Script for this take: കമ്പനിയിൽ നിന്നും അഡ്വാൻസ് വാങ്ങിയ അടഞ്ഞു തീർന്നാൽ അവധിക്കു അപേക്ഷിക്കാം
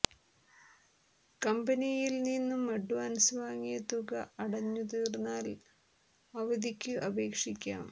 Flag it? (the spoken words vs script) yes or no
yes